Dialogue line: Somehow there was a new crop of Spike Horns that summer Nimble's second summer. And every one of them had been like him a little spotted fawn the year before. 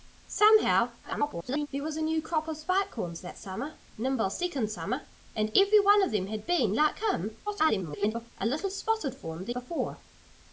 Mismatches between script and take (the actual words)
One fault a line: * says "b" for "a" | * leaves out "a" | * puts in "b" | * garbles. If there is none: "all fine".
* garbles
* garbles
* leaves out "year"